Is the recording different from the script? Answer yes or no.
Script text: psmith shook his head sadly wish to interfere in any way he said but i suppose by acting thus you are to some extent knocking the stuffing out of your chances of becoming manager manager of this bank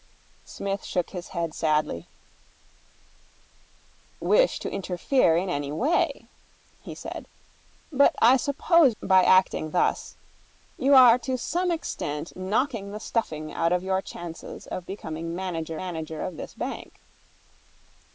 no